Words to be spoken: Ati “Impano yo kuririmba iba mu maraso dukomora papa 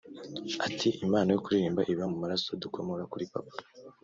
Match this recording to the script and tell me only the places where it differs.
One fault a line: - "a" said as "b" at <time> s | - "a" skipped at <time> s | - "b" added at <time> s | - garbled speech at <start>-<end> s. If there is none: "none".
- "kuri" added at 3.1 s